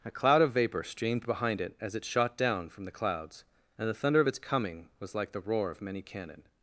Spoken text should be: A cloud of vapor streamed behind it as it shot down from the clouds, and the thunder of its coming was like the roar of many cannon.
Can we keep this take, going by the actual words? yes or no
yes